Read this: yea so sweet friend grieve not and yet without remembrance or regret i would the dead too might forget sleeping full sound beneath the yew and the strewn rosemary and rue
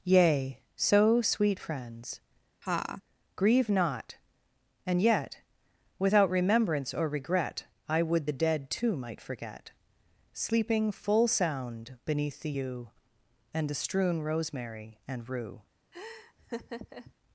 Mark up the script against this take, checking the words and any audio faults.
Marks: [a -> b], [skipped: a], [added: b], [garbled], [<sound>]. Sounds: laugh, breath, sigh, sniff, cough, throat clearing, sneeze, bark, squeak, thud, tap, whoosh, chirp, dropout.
yea so sweet [friend -> friends] [laugh] grieve not and yet without remembrance or regret i would the dead too might forget sleeping full sound beneath the yew and the strewn rosemary and rue [laugh]